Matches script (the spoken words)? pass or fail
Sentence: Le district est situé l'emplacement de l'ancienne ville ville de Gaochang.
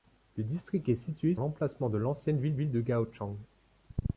pass